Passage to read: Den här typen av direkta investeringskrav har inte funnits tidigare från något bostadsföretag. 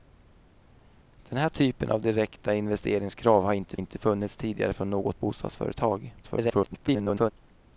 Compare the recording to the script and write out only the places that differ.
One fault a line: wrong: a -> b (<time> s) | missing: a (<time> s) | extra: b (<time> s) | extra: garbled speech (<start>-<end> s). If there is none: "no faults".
extra: inte (3.7 s)
extra: garbled speech (6.2-7.3 s)